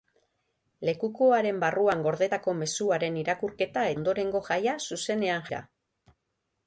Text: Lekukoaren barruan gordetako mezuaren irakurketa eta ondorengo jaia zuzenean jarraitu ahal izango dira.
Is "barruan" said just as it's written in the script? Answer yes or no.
yes